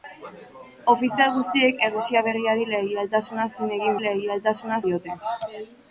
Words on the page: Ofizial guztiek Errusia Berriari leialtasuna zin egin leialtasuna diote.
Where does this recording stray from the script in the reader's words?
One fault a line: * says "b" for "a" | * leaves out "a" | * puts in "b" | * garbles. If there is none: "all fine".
all fine